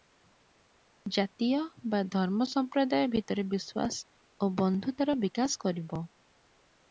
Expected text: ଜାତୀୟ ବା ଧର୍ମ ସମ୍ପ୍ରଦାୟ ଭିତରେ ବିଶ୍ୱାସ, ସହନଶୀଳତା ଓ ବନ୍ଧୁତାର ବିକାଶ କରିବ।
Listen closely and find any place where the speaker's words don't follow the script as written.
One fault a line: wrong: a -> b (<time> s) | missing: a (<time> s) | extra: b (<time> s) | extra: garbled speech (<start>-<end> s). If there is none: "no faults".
missing: ସହନଶୀଳତା (4.0 s)